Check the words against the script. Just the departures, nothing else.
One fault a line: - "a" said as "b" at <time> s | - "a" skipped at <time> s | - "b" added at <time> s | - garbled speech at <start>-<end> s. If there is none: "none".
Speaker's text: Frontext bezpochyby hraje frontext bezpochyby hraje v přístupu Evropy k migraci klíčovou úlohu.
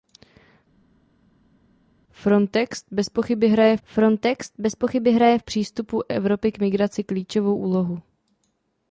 none